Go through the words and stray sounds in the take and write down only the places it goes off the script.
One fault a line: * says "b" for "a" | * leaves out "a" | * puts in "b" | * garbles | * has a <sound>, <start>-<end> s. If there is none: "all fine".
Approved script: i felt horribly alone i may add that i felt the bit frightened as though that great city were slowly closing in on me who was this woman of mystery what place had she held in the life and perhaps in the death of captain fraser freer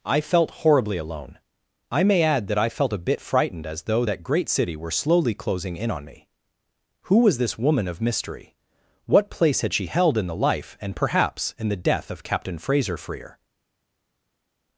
* says "a" for "the"